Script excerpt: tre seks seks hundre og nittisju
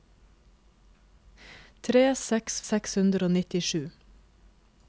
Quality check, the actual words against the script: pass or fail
pass